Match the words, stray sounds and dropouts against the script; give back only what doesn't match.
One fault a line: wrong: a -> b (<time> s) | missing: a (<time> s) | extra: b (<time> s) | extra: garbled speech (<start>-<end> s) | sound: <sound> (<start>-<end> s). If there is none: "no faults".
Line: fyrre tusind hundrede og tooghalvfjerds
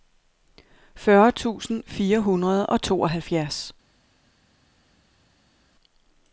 extra: fire (1.9 s)